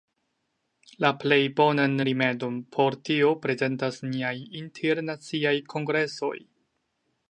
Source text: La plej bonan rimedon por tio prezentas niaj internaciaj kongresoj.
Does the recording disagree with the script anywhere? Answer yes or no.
no